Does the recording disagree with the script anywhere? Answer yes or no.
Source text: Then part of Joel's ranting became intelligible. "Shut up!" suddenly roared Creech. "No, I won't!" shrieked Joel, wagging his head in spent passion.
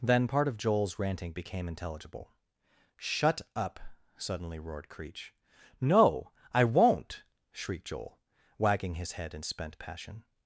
no